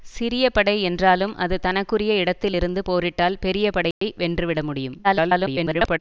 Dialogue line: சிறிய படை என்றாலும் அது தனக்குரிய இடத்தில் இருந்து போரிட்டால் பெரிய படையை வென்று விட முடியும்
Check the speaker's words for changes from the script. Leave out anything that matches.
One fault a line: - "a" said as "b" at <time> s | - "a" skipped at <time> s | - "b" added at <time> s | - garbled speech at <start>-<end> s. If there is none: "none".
- garbled speech at 5.0-6.0 s